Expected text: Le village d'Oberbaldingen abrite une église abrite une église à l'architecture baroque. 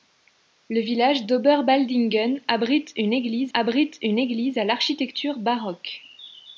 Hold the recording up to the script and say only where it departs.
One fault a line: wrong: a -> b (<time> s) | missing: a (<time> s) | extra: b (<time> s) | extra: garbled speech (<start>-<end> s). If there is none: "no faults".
no faults